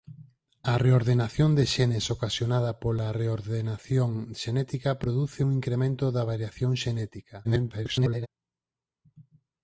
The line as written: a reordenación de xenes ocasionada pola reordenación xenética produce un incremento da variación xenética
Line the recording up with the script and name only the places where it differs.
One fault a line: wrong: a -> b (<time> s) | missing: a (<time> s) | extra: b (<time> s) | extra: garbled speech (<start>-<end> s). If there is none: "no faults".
extra: garbled speech (7.4-8.3 s)